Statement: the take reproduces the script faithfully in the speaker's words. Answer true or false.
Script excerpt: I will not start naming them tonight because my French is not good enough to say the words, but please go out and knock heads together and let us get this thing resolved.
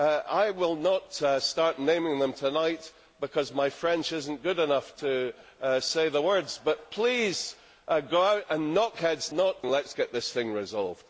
false